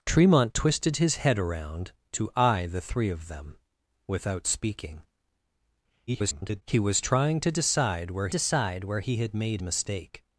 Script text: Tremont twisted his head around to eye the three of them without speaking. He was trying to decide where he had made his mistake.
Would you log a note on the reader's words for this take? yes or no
yes